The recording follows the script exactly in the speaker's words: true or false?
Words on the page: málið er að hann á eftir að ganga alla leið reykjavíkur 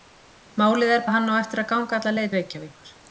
true